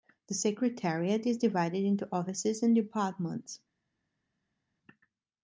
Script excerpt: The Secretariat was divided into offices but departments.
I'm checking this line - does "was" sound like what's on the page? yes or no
no